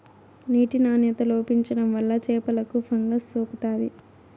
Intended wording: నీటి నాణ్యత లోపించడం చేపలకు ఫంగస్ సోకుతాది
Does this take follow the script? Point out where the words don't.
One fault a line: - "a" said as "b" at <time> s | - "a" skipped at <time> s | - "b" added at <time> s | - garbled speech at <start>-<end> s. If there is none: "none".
- "వల్ల" added at 1.9 s